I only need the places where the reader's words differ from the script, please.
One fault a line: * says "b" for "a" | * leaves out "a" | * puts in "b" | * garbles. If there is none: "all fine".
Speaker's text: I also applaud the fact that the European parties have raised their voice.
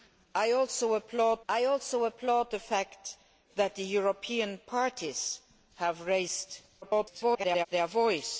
* puts in "I also applaud"
* garbles